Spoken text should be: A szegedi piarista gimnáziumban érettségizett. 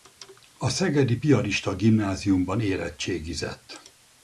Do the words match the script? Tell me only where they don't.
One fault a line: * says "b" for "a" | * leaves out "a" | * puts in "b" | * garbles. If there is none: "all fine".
all fine